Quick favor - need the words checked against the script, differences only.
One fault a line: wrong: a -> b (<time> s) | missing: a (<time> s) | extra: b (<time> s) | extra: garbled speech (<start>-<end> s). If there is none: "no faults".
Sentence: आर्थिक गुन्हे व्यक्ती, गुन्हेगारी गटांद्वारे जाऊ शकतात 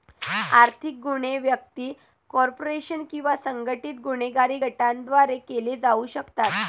extra: कॉर्पोरेशन किंवा संघटित (2.3 s)
extra: केले (5.4 s)